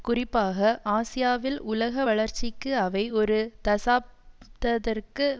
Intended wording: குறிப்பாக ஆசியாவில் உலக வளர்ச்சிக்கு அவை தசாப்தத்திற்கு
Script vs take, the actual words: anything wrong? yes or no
yes